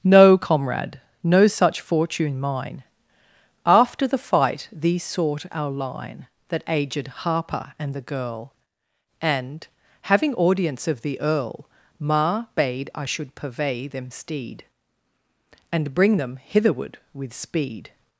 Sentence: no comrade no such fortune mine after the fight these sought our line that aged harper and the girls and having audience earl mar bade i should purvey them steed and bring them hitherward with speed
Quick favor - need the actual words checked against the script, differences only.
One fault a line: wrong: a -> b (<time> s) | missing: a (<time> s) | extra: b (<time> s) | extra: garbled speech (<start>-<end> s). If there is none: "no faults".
wrong: girls -> girl (8.0 s)
extra: of the (10.9 s)